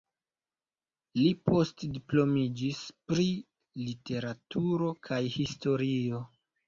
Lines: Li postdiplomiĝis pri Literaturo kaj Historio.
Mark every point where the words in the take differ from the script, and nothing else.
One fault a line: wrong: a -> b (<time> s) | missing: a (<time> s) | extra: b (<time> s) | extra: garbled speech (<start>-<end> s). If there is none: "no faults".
no faults